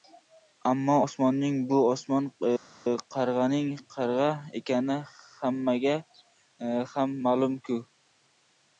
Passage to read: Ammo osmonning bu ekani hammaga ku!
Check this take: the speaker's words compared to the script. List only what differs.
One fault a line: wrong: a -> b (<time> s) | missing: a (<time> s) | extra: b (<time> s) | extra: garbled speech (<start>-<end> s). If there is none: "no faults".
extra: osmon qarg‘aning qarg‘a (1.9 s)
extra: ham ma'lum (7.0 s)